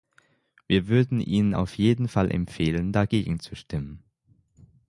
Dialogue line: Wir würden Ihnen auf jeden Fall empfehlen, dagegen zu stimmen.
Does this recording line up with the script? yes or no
yes